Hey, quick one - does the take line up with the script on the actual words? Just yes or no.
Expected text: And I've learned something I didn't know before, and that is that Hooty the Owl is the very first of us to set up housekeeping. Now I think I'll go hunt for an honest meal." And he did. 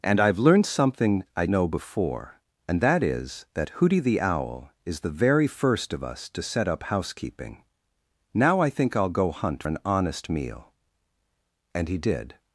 no